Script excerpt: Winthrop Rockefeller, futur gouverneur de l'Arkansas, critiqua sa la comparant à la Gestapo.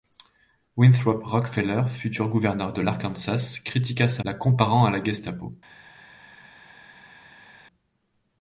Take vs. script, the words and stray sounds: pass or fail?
pass